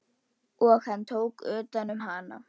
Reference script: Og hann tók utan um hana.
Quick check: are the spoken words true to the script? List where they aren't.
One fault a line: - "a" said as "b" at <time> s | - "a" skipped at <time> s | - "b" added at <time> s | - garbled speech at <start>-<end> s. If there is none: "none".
none